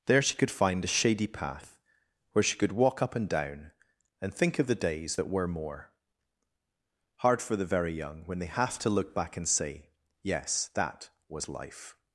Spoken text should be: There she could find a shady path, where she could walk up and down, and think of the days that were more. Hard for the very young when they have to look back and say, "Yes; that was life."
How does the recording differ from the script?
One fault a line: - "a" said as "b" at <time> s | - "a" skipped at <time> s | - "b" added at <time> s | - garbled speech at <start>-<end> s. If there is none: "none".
none